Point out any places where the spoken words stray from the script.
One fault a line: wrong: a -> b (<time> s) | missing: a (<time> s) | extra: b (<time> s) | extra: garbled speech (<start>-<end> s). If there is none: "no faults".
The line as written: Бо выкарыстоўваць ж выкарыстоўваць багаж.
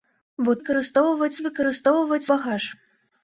no faults